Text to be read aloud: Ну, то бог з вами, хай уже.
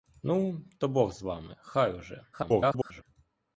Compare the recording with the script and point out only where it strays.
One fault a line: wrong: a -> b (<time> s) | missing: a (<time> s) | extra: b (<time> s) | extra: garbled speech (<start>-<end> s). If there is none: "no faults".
extra: garbled speech (2.3-3.0 s)